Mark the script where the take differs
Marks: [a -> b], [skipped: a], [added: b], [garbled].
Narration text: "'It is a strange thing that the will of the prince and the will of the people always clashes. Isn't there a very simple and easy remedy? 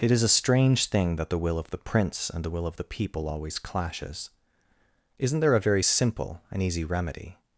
"'It is a strange thing that the will of the prince and the will of the people always clashes. Isn't there a very simple and easy remedy?